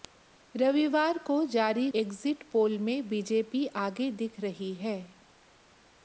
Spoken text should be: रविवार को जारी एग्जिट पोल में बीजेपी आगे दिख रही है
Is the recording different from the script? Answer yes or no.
no